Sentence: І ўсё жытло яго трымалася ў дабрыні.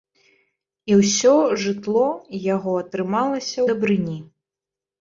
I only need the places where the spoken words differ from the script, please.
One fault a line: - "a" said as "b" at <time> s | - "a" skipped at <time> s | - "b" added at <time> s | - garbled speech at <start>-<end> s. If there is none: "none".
- "ў" skipped at 3.6 s